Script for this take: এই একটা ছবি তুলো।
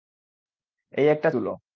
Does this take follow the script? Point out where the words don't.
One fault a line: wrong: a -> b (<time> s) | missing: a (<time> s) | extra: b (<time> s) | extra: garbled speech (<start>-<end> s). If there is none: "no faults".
missing: ছবি (1.3 s)